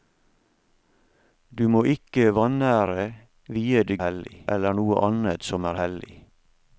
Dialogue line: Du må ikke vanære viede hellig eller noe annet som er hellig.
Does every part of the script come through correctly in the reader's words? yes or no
yes